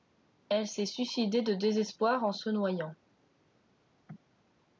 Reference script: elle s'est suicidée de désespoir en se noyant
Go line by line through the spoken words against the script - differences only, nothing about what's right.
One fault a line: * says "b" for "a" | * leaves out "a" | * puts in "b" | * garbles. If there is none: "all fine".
all fine